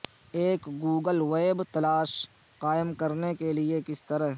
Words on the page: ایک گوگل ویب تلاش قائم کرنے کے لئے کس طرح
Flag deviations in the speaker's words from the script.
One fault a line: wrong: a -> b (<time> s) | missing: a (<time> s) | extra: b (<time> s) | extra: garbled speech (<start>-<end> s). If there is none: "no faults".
no faults